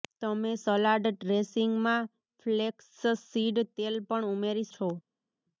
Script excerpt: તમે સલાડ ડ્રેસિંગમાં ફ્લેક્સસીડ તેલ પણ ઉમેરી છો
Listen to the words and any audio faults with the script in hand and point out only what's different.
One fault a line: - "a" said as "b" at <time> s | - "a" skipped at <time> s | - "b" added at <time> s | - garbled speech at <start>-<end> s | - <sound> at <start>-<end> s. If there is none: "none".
none